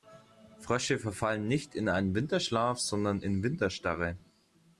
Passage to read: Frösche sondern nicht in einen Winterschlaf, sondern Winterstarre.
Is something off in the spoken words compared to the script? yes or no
yes